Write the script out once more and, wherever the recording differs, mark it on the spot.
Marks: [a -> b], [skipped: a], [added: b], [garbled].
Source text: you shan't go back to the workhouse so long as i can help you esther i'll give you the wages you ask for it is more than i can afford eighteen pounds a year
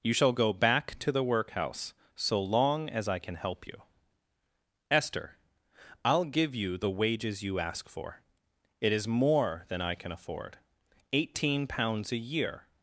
you [shan't -> shall] go back to the workhouse so long as i can help you esther i'll give you the wages you ask for it is more than i can afford eighteen pounds a year